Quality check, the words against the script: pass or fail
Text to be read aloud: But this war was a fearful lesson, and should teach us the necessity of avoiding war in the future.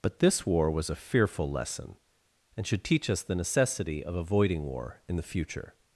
pass